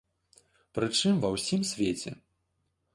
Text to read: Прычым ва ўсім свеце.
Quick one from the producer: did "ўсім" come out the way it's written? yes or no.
yes